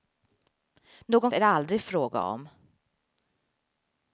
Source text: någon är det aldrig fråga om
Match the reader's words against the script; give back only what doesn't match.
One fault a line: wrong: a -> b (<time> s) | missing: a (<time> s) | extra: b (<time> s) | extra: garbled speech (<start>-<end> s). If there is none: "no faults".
no faults